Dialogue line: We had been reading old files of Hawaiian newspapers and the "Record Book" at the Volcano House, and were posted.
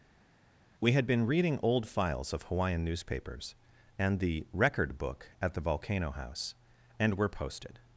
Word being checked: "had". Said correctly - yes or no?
yes